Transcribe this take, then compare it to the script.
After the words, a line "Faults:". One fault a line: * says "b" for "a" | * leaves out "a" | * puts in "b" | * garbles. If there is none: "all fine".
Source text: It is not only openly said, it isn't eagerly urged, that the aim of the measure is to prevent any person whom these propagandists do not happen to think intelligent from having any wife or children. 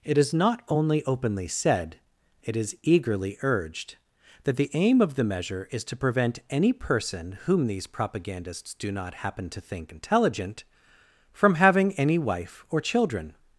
It is not only openly said, it is eagerly urged, that the aim of the measure is to prevent any person whom these propagandists do not happen to think intelligent from having any wife or children.
Faults:
* says "is" for "isn't"